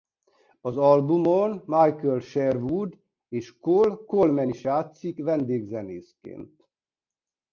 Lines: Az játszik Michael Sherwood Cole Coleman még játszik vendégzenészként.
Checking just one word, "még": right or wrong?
wrong